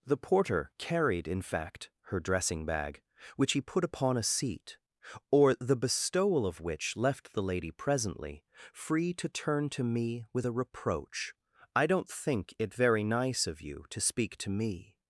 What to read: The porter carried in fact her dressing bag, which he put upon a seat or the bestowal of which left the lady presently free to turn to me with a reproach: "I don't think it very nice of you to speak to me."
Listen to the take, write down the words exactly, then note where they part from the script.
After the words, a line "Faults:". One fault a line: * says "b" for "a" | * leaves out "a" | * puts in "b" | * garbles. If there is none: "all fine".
The porter carried in fact her dressing bag, which he put upon a seat or the bestowal of which left the lady presently free to turn to me with a reproach: "I don't think it very nice of you to speak to me."
Faults:
all fine